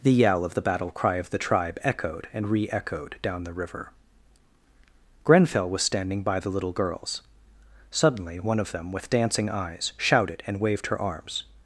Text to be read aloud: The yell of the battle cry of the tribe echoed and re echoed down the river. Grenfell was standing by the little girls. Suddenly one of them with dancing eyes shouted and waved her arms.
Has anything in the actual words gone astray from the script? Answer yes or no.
no